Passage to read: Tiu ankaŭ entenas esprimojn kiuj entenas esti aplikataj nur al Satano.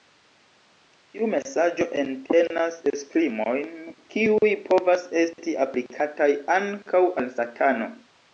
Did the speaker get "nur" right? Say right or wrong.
wrong